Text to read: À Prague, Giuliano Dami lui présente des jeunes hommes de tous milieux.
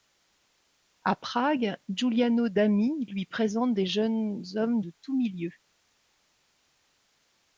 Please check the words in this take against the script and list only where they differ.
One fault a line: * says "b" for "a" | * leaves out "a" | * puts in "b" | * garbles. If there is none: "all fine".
all fine